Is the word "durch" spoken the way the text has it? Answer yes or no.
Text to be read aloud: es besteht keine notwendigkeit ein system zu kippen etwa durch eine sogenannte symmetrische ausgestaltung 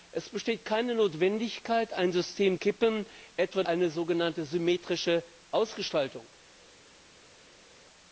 no